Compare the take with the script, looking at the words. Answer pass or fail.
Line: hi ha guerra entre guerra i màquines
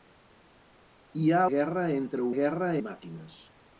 pass